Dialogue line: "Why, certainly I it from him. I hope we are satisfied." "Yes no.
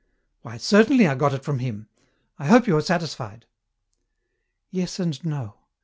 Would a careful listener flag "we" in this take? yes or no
yes